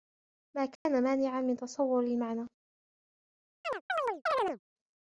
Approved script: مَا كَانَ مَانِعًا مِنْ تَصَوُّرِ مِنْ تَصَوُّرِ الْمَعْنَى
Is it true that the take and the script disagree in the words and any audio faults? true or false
true